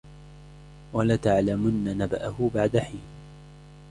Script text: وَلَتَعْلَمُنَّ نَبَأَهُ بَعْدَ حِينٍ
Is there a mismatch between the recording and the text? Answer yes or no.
no